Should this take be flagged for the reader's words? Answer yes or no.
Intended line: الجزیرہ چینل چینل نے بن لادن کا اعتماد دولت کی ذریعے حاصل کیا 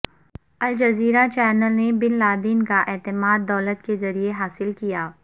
yes